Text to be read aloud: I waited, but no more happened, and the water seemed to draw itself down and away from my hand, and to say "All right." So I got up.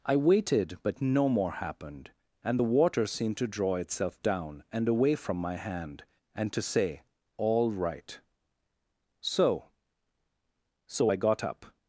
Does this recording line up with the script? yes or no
no